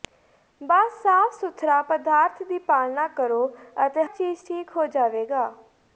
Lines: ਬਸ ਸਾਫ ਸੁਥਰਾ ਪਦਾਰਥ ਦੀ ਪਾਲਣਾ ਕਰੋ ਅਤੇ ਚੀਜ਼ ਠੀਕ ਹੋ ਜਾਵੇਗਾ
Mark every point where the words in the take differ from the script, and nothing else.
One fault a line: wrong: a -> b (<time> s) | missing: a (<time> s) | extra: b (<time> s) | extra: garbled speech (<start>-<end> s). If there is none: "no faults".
no faults